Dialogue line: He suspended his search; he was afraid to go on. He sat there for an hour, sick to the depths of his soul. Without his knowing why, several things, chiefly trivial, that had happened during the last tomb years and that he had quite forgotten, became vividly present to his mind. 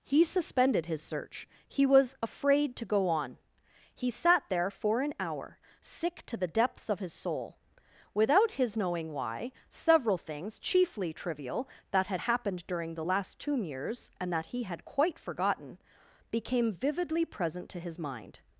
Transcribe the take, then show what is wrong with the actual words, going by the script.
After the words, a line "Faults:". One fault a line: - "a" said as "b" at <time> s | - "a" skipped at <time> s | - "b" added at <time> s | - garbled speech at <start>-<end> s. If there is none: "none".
He suspended his search; he was afraid to go on. He sat there for an hour, sick to the depths of his soul. Without his knowing why, several things, chiefly trivial, that had happened during the last tomb years and that he had quite forgotten, became vividly present to his mind.
Faults:
none